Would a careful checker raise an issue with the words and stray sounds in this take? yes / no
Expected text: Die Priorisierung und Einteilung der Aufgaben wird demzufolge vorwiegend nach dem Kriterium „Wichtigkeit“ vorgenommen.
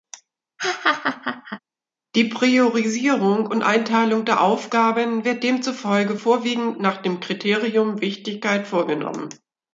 yes